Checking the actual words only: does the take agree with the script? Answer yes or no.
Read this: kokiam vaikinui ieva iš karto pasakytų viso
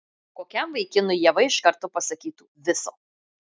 yes